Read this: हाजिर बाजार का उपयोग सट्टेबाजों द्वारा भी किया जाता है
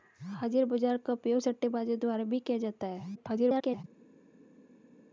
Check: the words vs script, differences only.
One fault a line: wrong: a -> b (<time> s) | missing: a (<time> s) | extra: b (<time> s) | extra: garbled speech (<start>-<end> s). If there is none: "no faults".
extra: garbled speech (3.2-3.8 s)